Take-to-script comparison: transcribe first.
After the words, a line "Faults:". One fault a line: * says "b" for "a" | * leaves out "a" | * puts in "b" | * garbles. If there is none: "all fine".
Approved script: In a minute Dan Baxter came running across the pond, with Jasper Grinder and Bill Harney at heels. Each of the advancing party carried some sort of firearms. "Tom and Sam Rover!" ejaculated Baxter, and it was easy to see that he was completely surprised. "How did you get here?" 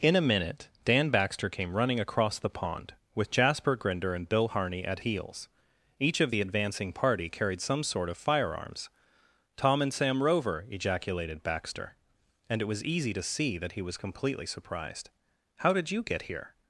In a minute Dan Baxter came running across the pond, with Jasper Grinder and Bill Harney at heels. Each of the advancing party carried some sort of firearms. "Tom and Sam Rover!" ejaculated Baxter, and it was easy to see that he was completely surprised. "How did you get here?"
Faults:
all fine